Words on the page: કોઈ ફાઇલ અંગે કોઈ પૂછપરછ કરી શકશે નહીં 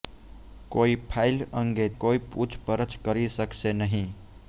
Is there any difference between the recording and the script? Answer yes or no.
no